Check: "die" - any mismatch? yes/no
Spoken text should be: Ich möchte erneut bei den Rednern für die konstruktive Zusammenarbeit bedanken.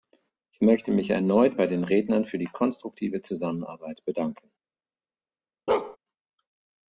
no